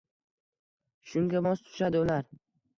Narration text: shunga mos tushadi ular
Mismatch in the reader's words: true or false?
false